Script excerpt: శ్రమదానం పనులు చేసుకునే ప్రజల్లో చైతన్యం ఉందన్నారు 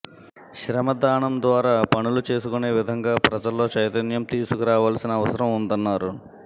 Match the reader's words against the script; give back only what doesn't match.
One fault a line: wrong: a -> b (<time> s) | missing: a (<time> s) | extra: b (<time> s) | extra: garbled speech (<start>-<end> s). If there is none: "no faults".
extra: ద్వారా (1.4 s)
extra: విధంగా (2.8 s)
extra: తీసుకురావాల్సిన అవసరం (4.3 s)